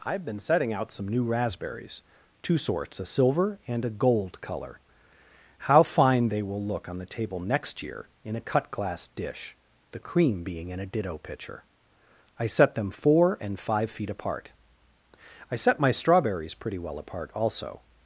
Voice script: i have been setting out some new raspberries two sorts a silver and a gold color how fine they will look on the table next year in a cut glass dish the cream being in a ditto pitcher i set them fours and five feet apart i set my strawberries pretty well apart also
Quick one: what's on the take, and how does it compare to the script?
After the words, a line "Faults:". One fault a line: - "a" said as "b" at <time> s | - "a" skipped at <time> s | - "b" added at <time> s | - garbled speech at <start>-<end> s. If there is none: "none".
i have been setting out some new raspberries two sorts a silver and a gold color how fine they will look on the table next year in a cut glass dish the cream being in a ditto pitcher i set them four and five feet apart i set my strawberries pretty well apart also
Faults:
- "fours" said as "four" at 12.9 s